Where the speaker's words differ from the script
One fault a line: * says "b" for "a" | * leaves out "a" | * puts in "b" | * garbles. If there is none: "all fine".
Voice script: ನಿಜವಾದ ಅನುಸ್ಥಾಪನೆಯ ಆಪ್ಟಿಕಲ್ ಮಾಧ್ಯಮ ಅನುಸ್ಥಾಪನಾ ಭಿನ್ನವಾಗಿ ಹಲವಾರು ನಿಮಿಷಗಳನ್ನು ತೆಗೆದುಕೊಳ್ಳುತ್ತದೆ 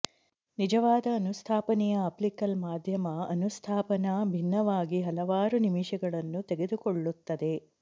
all fine